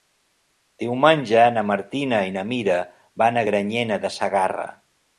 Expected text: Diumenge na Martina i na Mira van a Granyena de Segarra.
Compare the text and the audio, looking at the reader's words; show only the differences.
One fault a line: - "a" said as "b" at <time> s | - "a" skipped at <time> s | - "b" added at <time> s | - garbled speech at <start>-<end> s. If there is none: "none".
none